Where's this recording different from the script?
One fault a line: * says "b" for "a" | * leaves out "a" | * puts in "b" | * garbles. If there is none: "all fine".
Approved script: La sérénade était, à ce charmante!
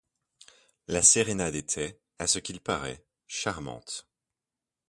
* puts in "qu'il paraît"